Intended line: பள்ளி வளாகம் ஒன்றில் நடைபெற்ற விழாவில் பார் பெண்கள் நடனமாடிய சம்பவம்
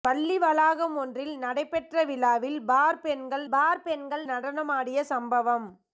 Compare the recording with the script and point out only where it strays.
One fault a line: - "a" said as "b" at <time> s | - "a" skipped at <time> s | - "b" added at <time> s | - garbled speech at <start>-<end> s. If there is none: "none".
- "பார் பெண்கள்" added at 3.5 s